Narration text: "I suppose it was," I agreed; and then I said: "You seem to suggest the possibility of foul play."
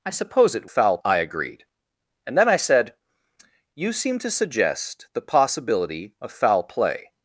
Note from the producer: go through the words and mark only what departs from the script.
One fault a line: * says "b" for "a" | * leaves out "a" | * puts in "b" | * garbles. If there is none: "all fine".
* says "foul" for "was"